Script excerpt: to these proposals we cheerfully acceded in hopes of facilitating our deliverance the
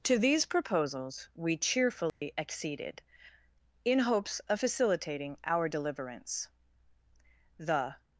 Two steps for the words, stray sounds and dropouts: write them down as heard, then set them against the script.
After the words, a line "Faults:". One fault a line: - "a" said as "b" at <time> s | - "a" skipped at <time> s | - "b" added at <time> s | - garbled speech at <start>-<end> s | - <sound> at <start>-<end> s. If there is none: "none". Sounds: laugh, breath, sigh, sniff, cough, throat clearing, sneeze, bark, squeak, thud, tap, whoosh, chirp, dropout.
to these proposals we cheerfully acceded in hopes of facilitating our deliverance the
Faults:
- dropout at 2.1-2.2 s